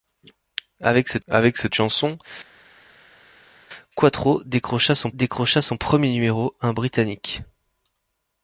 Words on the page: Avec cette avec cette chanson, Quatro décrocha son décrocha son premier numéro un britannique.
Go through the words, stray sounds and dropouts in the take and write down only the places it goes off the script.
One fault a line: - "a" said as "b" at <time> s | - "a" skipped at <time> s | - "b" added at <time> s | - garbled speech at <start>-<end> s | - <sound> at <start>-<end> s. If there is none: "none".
none